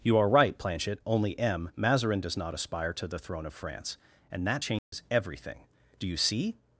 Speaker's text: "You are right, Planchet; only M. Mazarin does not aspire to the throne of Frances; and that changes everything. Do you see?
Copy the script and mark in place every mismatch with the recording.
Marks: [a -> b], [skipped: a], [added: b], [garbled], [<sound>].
"You are right, Planchet; only M. Mazarin does not aspire to the throne of [Frances; -> France] and that changes [dropout] everything. Do you see?